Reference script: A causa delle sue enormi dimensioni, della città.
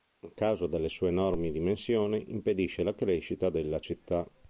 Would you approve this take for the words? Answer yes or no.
no